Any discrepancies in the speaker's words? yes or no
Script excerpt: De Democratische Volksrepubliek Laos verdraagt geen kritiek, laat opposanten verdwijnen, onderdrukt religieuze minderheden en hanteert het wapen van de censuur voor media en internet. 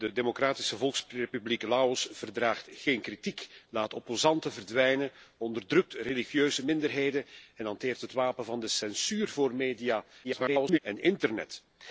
yes